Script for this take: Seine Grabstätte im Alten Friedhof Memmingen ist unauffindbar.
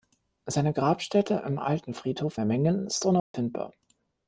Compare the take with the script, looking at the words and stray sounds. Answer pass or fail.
fail